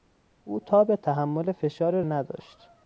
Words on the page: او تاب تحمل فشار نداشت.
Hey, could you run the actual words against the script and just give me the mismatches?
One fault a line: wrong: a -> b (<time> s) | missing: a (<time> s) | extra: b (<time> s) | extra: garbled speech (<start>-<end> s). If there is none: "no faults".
no faults